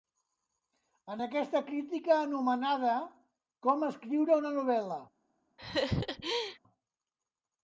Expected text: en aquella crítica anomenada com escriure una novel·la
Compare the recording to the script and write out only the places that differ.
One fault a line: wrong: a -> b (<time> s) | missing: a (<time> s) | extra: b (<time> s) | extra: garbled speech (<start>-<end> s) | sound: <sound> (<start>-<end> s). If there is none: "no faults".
wrong: aquella -> aquesta (1.2 s)
sound: laugh (5.6-6.6 s)